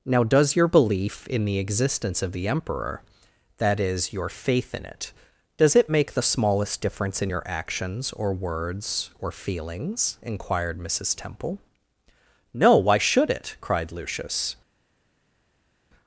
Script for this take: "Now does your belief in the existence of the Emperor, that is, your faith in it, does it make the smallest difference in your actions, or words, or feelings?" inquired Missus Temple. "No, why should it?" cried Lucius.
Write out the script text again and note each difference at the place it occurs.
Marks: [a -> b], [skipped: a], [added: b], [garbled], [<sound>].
"Now does your belief in the existence of the Emperor, that is, your faith in it, does it make the smallest difference in your actions, or words, or feelings?" inquired Missus Temple. "No, why should it?" cried Lucius.